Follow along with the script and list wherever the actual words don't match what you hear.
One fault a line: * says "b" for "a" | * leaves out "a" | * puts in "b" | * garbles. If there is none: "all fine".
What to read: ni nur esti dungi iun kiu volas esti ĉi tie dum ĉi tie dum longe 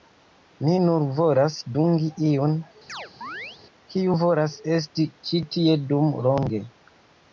* says "volas" for "esti"
* leaves out "ĉi tie dum"